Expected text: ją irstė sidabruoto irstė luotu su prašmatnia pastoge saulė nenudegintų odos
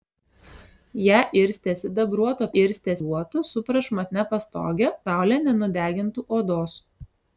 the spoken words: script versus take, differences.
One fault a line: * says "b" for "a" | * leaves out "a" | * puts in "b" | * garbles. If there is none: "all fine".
all fine